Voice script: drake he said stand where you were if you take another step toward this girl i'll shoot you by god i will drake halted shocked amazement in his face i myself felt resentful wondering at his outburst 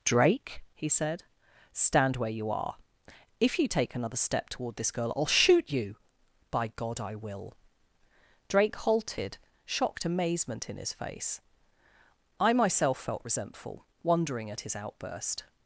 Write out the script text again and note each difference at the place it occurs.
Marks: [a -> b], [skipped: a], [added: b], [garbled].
drake he said stand where you [were -> are] if you take another step toward this girl i'll shoot you by god i will drake halted shocked amazement in his face i myself felt resentful wondering at his outburst